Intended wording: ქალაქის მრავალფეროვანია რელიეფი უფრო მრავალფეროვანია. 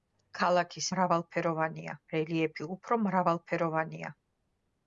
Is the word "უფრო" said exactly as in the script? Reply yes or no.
yes